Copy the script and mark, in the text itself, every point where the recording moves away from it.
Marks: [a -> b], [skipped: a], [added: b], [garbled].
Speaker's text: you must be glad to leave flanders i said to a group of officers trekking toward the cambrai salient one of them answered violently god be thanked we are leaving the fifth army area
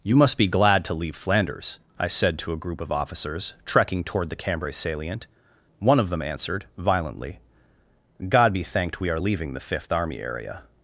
you must be glad to leave flanders i said to a group of officers trekking toward the cambrai salient one of them answered violently god be thanked we are leaving the fifth army area